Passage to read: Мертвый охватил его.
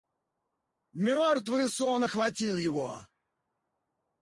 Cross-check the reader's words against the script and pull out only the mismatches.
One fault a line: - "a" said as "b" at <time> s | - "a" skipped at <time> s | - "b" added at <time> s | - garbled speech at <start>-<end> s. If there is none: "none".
- "сон" added at 1.7 s